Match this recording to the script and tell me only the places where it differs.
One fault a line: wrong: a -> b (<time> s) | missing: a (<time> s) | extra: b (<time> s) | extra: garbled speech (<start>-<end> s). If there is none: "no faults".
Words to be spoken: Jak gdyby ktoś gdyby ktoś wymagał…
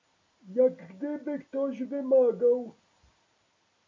missing: gdyby ktoś (1.8 s)